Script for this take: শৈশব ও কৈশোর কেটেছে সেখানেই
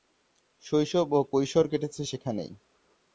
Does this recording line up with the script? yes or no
yes